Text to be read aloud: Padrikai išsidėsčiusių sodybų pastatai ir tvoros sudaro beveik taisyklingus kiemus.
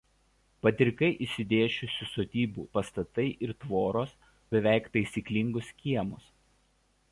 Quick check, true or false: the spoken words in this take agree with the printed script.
false